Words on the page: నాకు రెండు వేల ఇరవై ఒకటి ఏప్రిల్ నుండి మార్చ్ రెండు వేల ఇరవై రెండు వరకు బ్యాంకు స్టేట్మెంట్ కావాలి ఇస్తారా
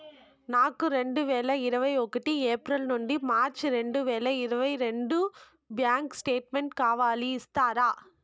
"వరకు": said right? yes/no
no